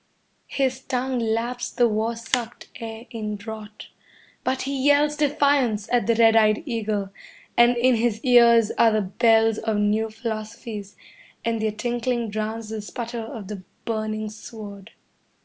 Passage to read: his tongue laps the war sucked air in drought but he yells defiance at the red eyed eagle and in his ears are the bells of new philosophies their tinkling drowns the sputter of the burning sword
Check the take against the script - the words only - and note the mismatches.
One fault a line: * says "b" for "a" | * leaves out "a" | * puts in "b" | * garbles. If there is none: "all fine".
* puts in "and"